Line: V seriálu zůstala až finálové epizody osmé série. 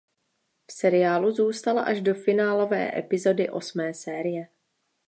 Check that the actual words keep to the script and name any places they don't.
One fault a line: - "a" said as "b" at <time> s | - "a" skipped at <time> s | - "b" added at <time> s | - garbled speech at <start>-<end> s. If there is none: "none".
- "do" added at 2.0 s